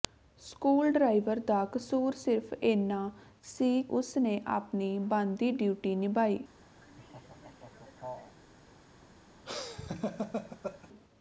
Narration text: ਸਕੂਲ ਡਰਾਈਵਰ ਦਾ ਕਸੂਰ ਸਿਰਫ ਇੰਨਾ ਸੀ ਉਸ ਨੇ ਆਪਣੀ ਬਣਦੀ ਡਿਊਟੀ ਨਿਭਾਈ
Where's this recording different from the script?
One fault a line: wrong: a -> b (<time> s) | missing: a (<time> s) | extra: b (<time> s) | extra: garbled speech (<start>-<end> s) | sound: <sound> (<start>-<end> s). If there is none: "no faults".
sound: laugh (6.8-8.4 s)
sound: laugh (9.4-10.9 s)